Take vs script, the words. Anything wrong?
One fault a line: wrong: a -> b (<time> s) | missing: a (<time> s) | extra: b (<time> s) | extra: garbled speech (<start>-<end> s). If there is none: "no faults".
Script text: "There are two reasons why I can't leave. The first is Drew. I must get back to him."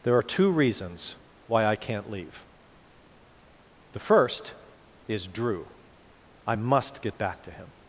no faults